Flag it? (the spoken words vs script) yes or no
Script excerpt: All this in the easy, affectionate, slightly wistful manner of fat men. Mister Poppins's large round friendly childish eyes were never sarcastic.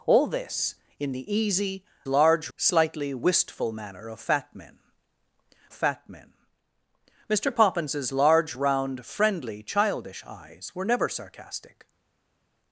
yes